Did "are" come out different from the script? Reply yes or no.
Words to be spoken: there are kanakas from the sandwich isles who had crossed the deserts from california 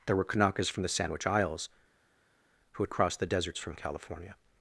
yes